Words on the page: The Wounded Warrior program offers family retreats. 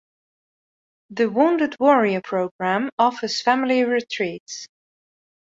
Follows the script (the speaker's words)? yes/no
yes